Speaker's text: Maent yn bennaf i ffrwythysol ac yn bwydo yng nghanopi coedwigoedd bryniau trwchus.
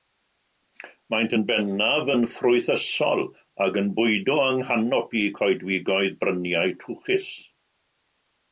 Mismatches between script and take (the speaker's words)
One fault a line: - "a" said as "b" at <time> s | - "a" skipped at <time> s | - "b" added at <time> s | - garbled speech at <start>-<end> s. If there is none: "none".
- "i" said as "yn" at 2.1 s